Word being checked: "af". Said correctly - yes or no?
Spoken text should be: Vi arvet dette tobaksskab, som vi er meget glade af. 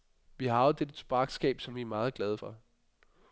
no